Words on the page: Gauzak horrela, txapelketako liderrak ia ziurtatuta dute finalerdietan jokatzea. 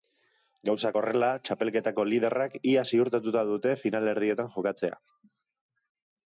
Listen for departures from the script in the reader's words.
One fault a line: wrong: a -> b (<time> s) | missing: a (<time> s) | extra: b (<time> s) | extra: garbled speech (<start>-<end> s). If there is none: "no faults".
no faults